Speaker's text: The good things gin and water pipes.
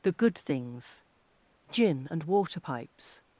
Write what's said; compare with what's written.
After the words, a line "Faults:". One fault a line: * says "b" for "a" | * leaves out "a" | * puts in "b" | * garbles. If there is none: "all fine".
The good things gin and water pipes.
Faults:
all fine